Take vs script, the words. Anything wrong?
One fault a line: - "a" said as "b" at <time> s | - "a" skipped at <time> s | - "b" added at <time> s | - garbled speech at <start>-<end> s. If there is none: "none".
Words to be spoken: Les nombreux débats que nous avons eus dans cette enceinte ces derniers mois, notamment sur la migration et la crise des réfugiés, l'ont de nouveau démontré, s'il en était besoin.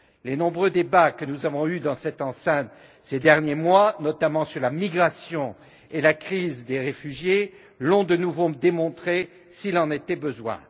none